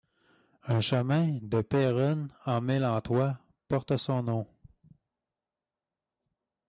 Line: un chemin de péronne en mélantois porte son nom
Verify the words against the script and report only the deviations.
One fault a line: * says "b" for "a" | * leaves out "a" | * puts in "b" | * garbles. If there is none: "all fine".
all fine